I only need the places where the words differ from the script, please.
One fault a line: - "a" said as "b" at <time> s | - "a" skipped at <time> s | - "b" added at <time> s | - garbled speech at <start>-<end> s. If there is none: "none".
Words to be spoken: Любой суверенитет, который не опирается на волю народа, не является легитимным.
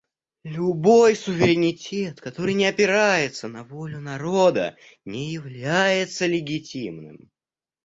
none